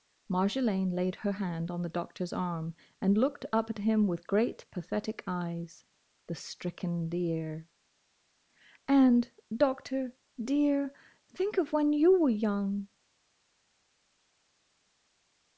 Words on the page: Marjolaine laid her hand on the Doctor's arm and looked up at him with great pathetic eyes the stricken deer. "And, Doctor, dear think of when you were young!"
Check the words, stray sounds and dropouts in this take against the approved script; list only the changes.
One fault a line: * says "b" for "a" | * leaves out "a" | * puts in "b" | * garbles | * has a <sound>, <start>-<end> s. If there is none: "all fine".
all fine